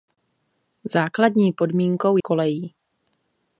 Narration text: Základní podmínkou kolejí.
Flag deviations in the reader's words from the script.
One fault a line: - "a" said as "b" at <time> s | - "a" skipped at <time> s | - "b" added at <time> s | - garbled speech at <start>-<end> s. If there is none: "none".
none